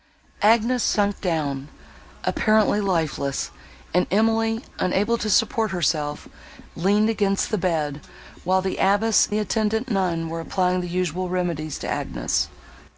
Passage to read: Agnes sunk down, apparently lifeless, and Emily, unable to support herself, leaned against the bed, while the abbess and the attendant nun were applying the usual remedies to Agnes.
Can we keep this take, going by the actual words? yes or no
no